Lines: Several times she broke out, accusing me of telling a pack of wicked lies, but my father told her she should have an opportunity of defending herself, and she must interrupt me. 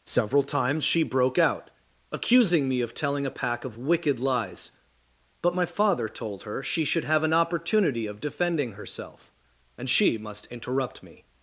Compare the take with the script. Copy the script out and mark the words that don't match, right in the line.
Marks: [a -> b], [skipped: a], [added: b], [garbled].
Several times she broke out, accusing me of telling a pack of wicked lies, but my father told her she should have an opportunity of defending herself, and she must interrupt me.